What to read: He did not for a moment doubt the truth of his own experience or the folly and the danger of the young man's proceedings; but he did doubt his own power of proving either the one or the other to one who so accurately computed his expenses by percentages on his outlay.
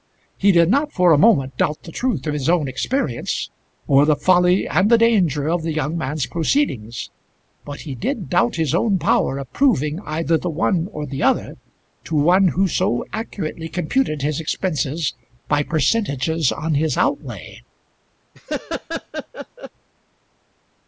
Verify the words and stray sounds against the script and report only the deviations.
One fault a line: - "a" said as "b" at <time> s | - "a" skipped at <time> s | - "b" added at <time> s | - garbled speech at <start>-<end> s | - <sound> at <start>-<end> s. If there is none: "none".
- laugh at 18.3-19.7 s